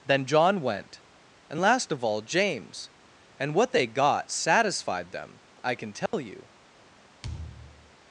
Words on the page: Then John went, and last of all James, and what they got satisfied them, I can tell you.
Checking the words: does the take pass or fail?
pass